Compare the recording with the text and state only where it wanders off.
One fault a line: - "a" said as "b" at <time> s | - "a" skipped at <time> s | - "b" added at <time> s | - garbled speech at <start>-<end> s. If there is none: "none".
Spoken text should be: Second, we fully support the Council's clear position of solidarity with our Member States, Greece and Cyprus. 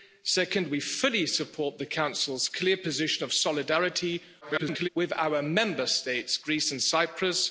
- garbled speech at 4.4-4.9 s